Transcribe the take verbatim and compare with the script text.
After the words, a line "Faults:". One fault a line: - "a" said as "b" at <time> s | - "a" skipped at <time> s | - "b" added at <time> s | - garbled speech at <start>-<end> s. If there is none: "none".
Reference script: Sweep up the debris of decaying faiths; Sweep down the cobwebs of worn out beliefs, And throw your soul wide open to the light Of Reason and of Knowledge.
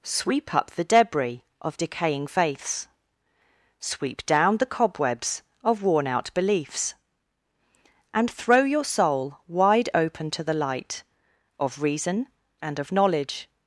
Sweep up the debris of decaying faiths; Sweep down the cobwebs of worn out beliefs, And throw your soul wide open to the light Of Reason and of Knowledge.
Faults:
none